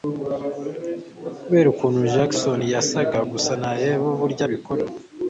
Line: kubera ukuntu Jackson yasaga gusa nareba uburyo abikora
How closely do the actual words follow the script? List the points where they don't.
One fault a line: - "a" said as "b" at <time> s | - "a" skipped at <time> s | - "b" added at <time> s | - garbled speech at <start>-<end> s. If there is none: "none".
none